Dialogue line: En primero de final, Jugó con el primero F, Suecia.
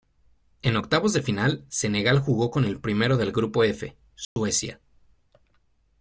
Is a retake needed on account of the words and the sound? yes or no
yes